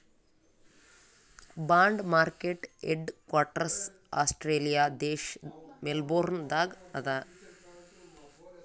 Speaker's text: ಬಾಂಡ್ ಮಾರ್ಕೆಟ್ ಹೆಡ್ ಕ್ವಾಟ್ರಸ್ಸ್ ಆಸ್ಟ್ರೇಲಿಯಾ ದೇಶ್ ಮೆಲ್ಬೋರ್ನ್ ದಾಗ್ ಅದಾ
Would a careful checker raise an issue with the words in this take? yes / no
no